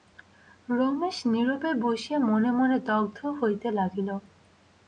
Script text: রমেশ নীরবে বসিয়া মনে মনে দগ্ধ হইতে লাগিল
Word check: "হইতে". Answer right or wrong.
right